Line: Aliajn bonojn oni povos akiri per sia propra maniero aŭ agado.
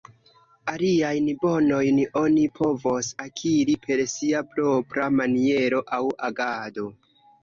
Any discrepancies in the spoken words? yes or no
no